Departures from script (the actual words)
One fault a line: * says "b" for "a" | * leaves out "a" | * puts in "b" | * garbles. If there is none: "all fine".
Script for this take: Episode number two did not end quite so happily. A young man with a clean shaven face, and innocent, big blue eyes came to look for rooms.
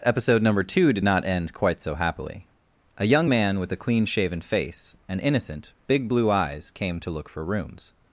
all fine